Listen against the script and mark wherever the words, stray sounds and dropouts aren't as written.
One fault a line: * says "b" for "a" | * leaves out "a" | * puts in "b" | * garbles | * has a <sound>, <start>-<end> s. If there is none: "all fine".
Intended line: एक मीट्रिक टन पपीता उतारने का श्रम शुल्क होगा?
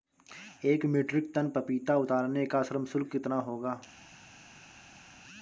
* puts in "कितना"